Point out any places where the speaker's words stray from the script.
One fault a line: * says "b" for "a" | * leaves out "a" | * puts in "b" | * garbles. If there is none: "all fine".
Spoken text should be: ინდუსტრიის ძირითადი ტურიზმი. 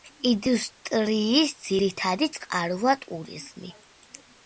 * puts in "წყაროა"